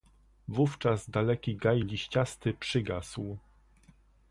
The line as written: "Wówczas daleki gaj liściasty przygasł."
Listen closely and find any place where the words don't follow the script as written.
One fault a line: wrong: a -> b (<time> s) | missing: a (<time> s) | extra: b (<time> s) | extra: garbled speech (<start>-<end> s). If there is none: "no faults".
no faults